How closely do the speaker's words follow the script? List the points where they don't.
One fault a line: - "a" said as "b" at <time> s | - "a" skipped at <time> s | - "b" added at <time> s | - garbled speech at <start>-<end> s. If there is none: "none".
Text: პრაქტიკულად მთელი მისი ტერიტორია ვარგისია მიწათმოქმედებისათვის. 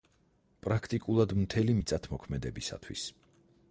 - "მისი ტერიტორია ვარგისია" skipped at 1.8 s